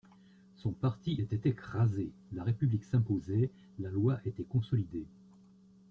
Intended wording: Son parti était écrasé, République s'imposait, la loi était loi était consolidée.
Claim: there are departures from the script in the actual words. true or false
true